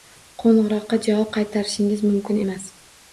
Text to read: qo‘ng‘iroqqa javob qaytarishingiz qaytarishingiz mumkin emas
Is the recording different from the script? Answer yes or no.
yes